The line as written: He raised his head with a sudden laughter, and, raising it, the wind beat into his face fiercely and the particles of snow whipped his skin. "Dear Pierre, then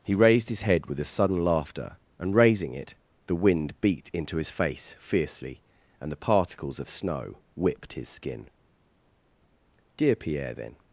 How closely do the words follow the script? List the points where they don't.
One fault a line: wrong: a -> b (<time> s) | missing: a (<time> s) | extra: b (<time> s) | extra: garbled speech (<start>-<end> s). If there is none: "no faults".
no faults